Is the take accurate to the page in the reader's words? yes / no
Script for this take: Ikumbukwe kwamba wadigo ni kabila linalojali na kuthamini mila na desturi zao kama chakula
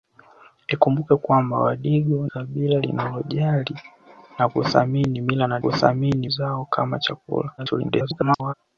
no